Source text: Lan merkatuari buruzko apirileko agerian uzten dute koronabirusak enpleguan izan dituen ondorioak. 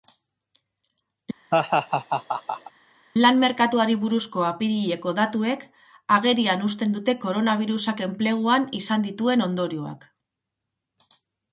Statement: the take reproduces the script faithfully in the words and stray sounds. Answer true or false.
false